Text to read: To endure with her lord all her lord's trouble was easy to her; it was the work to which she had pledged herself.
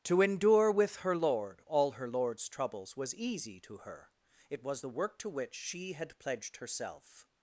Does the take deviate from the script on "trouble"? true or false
true